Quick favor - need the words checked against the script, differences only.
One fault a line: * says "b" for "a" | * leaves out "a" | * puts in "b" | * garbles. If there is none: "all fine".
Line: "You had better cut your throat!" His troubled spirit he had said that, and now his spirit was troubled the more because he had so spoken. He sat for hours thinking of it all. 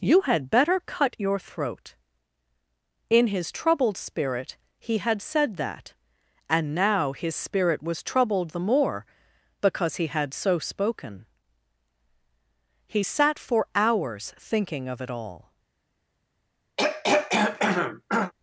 * puts in "In"